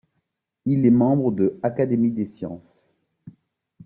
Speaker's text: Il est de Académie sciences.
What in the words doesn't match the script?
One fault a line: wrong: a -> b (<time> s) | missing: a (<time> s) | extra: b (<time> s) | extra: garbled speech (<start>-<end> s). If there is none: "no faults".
extra: membre (0.9 s)
extra: des (2.1 s)